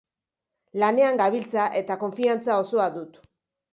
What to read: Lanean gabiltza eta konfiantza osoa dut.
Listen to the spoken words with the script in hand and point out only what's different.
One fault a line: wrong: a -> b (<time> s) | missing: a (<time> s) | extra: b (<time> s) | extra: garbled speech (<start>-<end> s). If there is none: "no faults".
no faults